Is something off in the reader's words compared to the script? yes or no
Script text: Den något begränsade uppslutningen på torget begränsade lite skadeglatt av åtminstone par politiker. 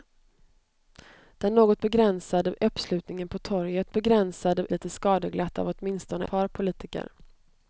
no